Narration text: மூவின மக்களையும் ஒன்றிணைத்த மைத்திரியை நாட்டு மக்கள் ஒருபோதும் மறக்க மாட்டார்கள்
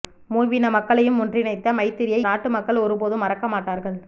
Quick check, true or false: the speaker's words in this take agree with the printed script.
true